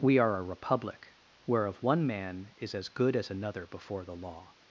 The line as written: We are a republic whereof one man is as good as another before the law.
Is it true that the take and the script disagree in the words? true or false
false